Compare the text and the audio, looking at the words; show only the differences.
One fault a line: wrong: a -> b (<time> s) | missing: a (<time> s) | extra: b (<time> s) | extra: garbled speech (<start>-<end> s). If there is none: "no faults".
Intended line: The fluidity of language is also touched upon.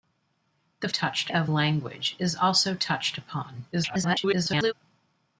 wrong: fluidity -> touched (0.9 s)
extra: garbled speech (3.7-4.7 s)